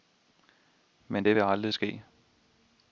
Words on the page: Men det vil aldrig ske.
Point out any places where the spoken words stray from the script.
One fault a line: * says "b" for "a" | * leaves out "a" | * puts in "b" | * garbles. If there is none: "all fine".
all fine